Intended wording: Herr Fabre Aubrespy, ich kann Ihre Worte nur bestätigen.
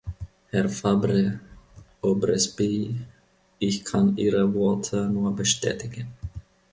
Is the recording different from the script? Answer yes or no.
no